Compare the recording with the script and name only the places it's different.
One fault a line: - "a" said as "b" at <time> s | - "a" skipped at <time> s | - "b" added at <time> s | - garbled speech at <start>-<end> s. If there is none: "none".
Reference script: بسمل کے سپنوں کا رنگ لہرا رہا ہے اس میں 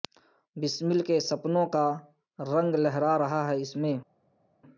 none